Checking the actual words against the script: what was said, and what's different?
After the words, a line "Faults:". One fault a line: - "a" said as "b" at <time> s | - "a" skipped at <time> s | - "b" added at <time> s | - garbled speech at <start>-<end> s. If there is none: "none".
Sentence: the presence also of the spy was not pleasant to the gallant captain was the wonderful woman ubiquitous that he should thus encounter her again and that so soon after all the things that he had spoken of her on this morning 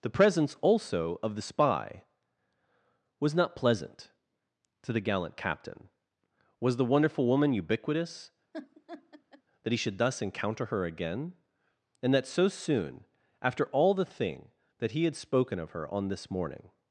the presence also of the spy was not pleasant to the gallant captain was the wonderful woman ubiquitous that he should thus encounter her again and that so soon after all the thing that he had spoken of her on this morning
Faults:
- "things" said as "thing" at 14.1 s